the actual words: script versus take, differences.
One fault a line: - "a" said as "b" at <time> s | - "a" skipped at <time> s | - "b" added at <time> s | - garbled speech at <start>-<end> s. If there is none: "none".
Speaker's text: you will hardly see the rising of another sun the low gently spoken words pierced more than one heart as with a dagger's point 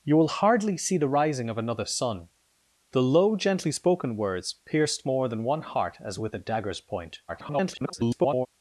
- garbled speech at 7.3-8.5 s